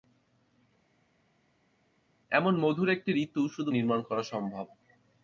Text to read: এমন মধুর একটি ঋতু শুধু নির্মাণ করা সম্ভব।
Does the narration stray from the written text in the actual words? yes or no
no